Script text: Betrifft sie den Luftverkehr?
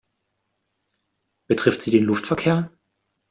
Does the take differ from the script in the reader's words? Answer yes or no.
no